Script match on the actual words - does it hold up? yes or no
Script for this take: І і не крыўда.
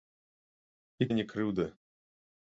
yes